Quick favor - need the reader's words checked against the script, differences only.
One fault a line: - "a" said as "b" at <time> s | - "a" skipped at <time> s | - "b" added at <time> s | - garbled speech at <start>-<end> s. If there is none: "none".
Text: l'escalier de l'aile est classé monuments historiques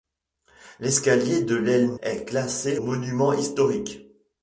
none